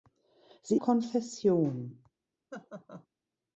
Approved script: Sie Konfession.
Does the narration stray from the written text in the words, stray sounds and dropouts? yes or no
yes